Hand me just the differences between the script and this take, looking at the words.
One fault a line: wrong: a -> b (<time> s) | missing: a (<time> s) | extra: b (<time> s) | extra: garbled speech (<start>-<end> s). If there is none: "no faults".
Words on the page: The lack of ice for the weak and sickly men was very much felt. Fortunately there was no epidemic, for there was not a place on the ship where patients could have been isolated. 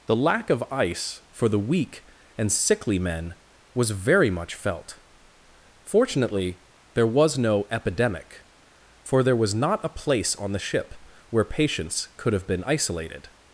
no faults